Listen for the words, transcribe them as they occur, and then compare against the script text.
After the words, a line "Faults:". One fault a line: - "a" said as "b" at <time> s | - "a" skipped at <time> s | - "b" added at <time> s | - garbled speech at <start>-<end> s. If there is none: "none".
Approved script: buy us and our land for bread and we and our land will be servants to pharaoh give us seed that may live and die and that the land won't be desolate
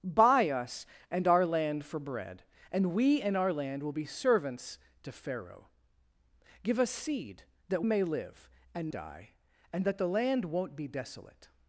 buy us and our land for bread and we and our land will be servants to pharaoh give us seed that may live and die and that the land won't be desolate
Faults:
none